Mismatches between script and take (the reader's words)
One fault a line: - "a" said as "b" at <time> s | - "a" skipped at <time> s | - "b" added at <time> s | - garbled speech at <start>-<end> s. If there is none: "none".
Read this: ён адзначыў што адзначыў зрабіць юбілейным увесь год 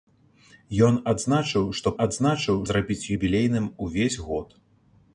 none